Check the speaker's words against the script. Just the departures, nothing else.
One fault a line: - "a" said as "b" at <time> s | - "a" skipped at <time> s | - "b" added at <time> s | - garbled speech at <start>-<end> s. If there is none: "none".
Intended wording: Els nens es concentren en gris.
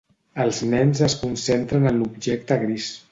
- "l'objecte" added at 2.0 s